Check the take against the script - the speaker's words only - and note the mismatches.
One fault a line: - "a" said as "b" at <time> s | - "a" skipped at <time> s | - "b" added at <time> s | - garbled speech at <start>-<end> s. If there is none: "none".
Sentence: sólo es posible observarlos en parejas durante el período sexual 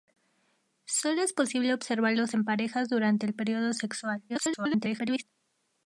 - garbled speech at 4.3-5.2 s